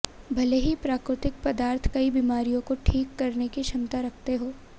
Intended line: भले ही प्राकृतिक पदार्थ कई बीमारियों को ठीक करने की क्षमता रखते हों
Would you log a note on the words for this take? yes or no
no